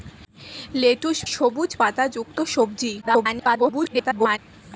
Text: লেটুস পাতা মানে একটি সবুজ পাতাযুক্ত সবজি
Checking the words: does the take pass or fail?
fail